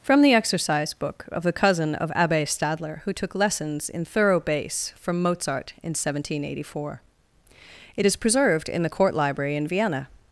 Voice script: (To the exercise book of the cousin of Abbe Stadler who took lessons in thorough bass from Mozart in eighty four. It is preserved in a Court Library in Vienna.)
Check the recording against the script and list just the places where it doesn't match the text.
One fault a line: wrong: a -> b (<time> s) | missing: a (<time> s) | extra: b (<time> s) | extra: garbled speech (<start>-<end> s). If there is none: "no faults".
wrong: To -> From (0.0 s)
extra: seventeen (5.9 s)
wrong: a -> the (8.8 s)